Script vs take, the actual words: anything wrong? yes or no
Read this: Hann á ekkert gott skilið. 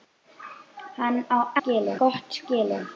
yes